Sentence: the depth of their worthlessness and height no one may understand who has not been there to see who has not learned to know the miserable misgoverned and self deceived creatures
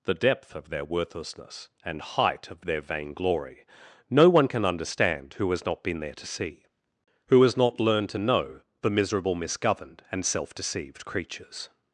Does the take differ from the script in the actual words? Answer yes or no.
yes